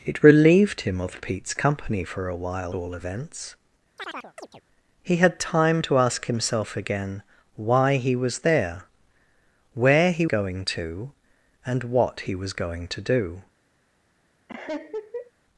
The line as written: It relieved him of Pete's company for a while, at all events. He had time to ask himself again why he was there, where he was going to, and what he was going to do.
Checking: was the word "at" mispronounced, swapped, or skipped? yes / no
yes